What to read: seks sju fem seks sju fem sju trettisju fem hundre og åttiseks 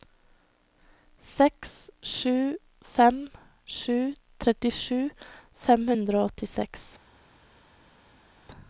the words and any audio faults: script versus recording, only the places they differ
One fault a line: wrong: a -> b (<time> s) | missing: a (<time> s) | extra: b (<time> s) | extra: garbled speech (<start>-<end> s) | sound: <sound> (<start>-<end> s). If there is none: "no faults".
missing: seks sju fem (3.2 s)